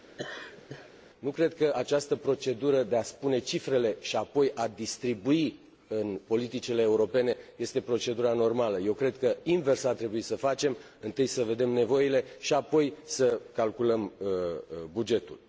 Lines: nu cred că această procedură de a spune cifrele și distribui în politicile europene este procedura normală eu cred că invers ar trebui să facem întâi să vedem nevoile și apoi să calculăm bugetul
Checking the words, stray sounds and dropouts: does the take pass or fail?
fail